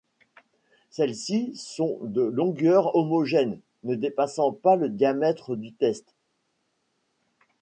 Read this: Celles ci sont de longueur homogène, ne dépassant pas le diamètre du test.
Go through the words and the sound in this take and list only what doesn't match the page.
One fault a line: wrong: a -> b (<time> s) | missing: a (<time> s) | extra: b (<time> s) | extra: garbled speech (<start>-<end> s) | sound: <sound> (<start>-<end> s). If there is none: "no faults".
no faults